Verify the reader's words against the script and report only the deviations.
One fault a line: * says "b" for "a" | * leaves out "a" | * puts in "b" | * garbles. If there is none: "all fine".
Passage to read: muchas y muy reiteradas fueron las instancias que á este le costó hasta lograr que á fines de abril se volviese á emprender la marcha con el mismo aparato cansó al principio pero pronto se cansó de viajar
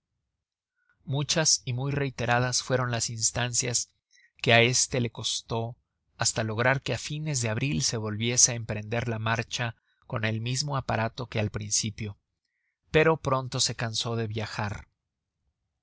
* says "que" for "cansó"